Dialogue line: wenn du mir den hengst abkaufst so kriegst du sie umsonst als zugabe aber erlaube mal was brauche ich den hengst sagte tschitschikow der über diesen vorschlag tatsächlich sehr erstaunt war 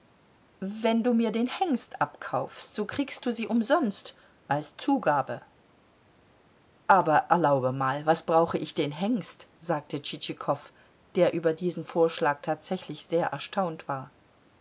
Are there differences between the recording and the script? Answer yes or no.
no